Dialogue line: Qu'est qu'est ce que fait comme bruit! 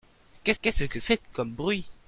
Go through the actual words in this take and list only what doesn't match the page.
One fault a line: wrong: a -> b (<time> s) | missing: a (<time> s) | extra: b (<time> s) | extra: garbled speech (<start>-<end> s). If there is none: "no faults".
no faults